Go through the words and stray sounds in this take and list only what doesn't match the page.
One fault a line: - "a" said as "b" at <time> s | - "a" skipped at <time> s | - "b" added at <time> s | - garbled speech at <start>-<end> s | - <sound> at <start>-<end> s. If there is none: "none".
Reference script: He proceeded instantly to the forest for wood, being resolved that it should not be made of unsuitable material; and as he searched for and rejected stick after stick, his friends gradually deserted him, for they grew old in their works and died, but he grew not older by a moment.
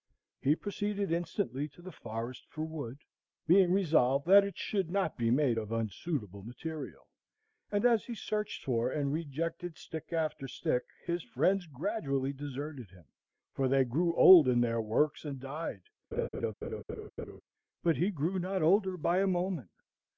- laugh at 16.1-17.4 s